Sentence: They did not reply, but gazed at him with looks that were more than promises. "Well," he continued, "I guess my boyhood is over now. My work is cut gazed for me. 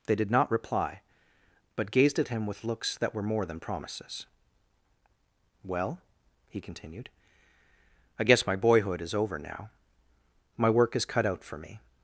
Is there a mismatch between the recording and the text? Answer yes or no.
yes